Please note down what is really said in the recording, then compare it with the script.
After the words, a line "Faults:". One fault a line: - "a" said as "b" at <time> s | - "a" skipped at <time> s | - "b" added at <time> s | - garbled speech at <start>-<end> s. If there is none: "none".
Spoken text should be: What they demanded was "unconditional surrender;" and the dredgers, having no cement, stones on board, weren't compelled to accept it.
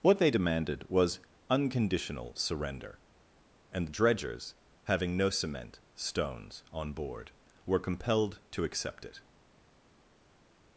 What they demanded was "unconditional surrender;" and the dredgers, having no cement, stones on board, were compelled to accept it.
Faults:
- "weren't" said as "were" at 7.7 s